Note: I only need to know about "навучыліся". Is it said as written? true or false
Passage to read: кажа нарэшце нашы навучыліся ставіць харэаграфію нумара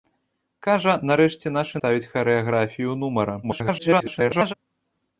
false